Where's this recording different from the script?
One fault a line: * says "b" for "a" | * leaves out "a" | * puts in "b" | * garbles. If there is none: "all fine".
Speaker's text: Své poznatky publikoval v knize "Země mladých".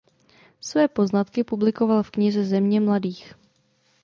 all fine